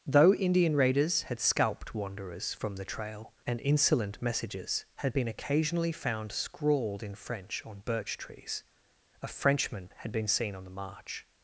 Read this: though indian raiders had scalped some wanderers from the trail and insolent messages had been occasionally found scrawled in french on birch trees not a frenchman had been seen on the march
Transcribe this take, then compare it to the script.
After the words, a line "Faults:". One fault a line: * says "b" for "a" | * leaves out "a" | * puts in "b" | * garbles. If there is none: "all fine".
though indian raiders had scalped wanderers from the trail and insolent messages had been occasionally found scrawled in french on birch trees a frenchman had been seen on the march
Faults:
* leaves out "some"
* leaves out "not"